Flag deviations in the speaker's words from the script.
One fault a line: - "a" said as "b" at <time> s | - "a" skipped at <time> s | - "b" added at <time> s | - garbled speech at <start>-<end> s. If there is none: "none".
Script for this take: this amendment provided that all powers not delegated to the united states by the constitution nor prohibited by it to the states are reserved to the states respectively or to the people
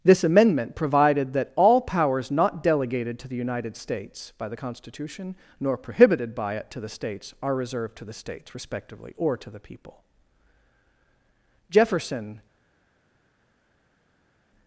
- "jefferson" added at 11.7 s